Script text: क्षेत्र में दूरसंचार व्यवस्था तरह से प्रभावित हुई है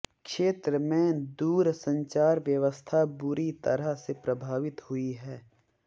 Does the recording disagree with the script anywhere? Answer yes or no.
yes